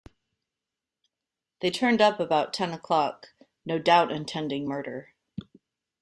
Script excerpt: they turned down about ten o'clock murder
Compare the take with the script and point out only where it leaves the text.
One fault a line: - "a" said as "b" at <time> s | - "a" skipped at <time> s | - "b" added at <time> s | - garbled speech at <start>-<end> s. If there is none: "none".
- "down" said as "up" at 2.0 s
- "no doubt intending" added at 3.7 s